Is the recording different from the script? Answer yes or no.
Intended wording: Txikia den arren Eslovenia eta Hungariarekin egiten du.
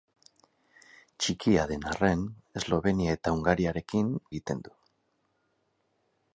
no